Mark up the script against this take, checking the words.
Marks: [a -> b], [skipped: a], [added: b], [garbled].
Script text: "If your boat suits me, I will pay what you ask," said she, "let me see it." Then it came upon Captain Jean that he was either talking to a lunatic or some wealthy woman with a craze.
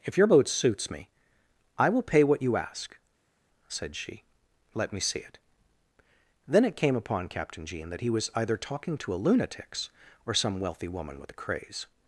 "If your boat suits me, I will pay what you ask," said she, "let me see it." Then it came upon Captain Jean that he was either talking to a [lunatic -> lunatics] or some wealthy woman with a craze.